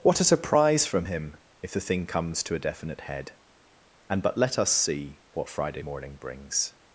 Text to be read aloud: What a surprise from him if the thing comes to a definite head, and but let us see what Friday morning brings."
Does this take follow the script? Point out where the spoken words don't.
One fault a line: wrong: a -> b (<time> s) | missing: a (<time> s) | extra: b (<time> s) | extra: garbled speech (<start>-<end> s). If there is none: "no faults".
no faults